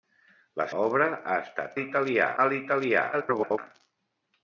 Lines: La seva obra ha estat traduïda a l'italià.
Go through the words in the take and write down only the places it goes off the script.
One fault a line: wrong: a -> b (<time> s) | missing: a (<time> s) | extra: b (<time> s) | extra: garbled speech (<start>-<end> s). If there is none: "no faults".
missing: seva (0.7 s)
wrong: traduïda -> l'italià (1.8 s)
extra: garbled speech (3.1-3.6 s)